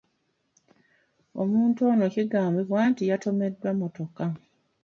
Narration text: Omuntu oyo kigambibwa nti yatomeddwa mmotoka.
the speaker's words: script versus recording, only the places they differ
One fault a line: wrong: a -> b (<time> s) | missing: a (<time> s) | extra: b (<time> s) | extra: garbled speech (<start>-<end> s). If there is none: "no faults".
wrong: oyo -> ono (1.9 s)